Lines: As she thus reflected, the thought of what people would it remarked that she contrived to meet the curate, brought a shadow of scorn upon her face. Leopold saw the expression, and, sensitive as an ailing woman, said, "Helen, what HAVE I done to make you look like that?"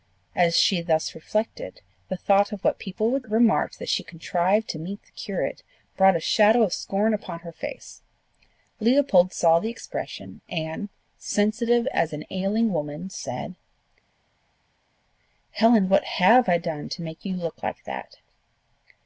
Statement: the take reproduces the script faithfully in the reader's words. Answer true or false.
true